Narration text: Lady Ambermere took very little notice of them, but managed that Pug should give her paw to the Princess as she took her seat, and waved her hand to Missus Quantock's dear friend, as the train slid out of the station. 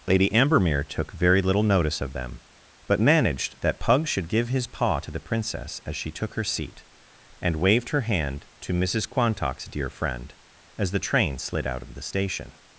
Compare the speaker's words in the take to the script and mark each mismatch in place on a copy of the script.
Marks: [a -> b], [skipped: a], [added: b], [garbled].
Lady Ambermere took very little notice of them, but managed that Pug should give [her -> his] paw to the Princess as she took her seat, and waved her hand to Missus Quantock's dear friend, as the train slid out of the station.